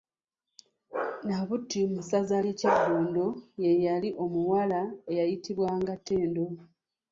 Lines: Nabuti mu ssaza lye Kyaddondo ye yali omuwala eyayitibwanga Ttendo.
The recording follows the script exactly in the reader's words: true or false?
true